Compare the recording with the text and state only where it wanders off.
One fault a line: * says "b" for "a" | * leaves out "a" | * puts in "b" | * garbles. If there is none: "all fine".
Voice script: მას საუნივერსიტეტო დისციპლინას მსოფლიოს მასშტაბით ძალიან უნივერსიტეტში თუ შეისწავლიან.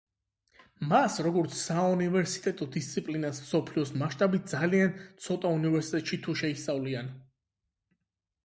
* puts in "როგორც"
* puts in "ცოტა"